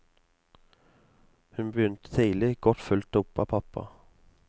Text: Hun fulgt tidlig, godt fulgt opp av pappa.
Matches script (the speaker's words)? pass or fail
fail